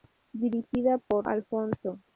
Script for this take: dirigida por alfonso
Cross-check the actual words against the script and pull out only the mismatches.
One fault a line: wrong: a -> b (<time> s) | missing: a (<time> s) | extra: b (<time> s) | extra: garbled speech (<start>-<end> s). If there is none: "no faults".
no faults